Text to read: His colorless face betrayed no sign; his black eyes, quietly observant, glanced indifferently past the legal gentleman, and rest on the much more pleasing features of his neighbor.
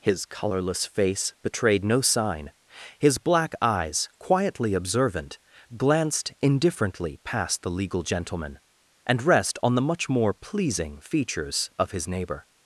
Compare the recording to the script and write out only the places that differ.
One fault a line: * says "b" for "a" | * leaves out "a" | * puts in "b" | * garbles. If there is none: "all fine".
all fine